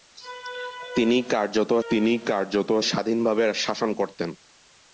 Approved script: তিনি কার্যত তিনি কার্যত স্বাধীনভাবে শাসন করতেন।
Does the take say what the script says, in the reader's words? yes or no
yes